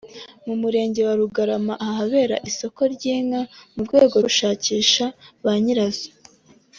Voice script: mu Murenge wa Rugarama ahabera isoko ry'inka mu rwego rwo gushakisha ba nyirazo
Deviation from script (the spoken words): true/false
true